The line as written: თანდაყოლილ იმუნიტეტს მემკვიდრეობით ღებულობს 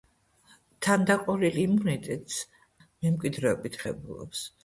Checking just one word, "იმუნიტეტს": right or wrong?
right